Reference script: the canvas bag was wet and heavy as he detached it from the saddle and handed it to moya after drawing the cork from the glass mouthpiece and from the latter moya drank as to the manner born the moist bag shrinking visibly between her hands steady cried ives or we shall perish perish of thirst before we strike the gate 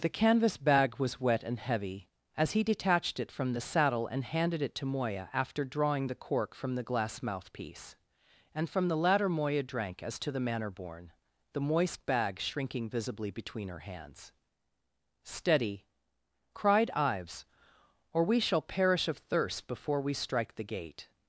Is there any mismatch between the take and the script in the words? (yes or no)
yes